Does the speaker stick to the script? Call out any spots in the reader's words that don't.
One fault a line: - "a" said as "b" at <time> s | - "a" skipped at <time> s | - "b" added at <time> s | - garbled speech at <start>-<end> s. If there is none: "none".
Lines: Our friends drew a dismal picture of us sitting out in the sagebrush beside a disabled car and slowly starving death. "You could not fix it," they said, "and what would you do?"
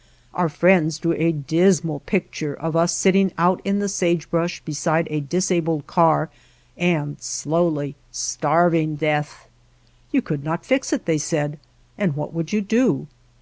none